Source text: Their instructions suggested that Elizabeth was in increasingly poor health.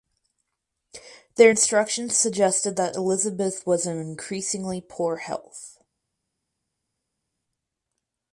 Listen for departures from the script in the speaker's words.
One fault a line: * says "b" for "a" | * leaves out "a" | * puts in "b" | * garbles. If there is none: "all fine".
all fine